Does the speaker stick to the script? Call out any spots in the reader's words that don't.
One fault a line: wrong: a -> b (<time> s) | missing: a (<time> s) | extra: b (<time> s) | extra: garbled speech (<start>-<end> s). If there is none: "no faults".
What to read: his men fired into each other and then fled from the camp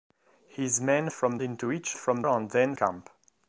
wrong: fired -> from (1.1 s)
wrong: other -> from (2.0 s)
missing: fled from the (2.7 s)